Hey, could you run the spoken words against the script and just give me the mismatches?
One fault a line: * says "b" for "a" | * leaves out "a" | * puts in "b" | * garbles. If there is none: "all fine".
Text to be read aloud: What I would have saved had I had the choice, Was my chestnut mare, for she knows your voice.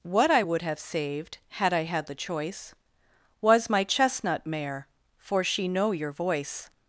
* says "know" for "knows"